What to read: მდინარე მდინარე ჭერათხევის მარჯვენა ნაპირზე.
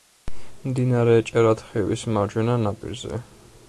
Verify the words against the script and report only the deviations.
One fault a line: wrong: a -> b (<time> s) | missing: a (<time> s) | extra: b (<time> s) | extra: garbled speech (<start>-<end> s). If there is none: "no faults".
missing: მდინარე (1.1 s)